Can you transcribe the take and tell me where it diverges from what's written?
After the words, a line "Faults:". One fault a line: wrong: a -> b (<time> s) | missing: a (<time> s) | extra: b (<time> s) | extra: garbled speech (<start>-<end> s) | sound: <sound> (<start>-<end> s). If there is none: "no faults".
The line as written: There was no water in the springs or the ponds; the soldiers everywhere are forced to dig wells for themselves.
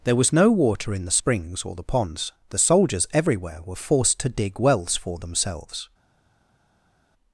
There was no water in the springs or the ponds; the soldiers everywhere were forced to dig wells for themselves.
Faults:
wrong: are -> were (3.6 s)